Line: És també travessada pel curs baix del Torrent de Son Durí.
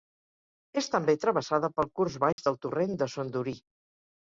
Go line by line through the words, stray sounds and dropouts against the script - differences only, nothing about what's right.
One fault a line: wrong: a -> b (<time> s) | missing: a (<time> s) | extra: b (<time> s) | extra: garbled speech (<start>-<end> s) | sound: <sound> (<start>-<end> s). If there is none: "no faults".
sound: dropout (2.3-2.4 s)